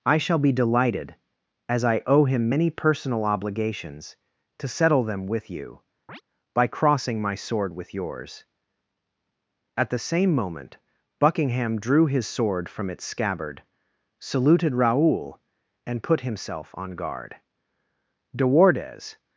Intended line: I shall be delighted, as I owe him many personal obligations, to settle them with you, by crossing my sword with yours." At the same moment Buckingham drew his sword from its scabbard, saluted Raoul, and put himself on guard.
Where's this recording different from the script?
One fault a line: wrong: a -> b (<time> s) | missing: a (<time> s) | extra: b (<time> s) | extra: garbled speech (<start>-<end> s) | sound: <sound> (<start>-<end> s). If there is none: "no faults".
sound: chirp (6.1-6.2 s)
extra: De Wardes (18.3 s)